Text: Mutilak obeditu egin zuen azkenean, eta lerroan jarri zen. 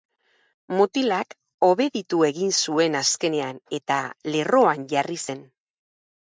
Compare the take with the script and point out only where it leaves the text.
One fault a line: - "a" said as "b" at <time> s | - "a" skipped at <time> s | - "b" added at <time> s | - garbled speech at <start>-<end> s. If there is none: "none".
none